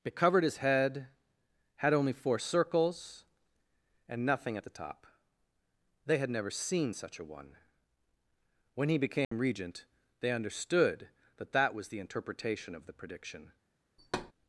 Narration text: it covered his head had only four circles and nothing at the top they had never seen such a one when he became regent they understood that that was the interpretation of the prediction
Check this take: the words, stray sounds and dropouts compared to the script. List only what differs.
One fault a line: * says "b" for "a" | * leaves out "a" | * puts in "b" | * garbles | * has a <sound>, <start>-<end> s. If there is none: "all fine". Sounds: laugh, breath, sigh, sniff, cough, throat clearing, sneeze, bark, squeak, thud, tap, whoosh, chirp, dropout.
* has a dropout, 9.2-9.3 s
* has a thud, 14.0-14.3 s